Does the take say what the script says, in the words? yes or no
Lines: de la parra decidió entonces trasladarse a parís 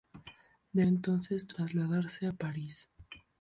no